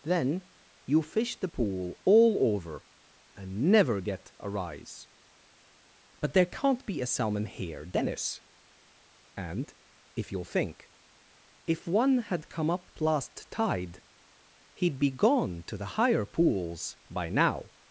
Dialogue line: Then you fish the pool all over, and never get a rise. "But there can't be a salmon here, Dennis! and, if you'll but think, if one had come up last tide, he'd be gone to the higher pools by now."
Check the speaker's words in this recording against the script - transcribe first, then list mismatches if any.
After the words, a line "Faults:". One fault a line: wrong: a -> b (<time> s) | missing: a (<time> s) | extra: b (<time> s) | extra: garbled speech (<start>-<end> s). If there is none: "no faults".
Then you fish the pool all over, and never get a rise. "But there can't be a salmon here, Dennis! and, if you'll think, if one had come up last tide, he'd be gone to the higher pools by now."
Faults:
missing: but (10.4 s)